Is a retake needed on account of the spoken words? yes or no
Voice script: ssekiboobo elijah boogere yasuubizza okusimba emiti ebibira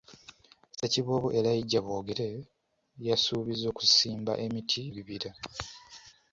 no